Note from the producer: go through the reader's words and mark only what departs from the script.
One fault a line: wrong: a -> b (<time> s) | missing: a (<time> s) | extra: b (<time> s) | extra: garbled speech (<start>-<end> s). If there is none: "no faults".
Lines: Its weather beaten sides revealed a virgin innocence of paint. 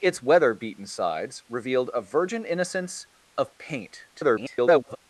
extra: garbled speech (4.1-5.0 s)